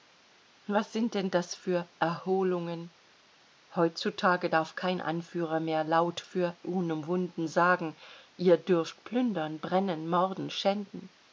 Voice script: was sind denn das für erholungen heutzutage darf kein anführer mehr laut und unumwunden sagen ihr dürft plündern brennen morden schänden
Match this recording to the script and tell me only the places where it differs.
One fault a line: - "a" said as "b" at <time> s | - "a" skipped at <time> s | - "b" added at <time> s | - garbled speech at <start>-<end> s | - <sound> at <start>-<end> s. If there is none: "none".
- "und" said as "für" at 6.2 s